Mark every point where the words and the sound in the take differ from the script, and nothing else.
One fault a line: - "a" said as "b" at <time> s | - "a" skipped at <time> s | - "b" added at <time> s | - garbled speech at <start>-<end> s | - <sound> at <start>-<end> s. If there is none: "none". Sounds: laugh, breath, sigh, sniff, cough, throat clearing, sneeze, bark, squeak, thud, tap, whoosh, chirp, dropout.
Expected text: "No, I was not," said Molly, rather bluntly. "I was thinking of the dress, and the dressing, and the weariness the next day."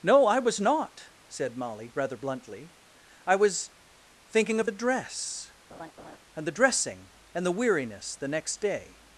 - laugh at 5.7-6.2 s